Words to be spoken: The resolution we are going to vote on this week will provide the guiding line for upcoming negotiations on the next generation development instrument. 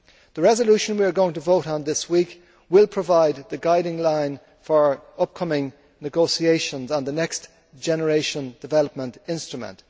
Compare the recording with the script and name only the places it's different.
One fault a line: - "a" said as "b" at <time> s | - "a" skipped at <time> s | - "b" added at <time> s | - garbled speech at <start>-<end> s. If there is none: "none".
none